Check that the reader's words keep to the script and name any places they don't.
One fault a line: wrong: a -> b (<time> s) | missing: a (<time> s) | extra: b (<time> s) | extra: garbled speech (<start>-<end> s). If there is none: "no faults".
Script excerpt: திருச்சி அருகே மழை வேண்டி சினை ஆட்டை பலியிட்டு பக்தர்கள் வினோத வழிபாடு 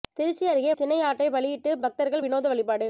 missing: மழை வேண்டி (0.7 s)